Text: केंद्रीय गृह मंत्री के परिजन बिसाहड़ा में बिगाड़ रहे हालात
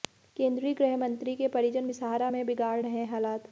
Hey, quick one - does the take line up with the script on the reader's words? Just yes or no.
yes